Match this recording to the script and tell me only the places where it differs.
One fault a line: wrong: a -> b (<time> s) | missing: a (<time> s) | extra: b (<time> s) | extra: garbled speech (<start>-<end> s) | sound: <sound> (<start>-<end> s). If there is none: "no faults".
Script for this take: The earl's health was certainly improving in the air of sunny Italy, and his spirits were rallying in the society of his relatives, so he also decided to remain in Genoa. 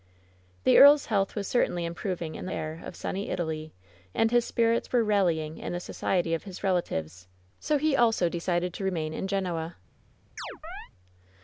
sound: chirp (10.4-10.9 s)